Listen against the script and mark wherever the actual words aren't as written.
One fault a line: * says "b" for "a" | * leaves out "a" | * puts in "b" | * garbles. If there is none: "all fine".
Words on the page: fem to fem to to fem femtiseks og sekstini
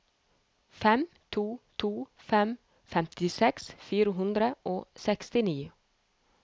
* leaves out "fem"
* leaves out "to"
* puts in "fire hundre"